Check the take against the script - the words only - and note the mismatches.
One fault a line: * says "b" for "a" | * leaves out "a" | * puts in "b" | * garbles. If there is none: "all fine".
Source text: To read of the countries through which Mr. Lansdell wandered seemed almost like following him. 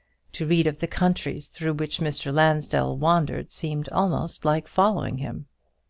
all fine